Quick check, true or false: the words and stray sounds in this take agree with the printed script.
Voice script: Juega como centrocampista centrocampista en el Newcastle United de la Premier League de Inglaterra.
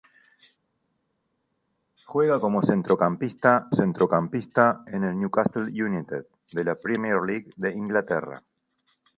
true